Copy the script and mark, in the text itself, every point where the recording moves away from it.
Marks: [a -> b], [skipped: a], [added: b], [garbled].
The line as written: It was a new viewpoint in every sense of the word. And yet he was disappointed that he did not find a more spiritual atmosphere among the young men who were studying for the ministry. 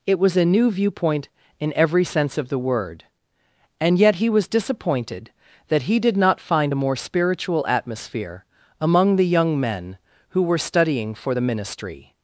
It was a new viewpoint in every sense of the word. And yet he was disappointed that he did not find a more spiritual atmosphere among the young men who were studying for the ministry.